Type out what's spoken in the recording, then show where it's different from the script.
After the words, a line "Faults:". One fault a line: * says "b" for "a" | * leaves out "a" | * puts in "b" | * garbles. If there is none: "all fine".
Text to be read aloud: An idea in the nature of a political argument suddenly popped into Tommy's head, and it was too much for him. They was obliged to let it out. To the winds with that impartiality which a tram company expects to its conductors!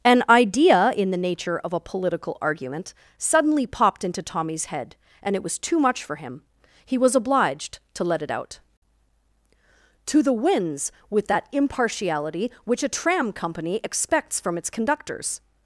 An idea in the nature of a political argument suddenly popped into Tommy's head, and it was too much for him. He was obliged to let it out. To the winds with that impartiality which a tram company expects from its conductors!
Faults:
* says "He" for "They"
* says "from" for "to"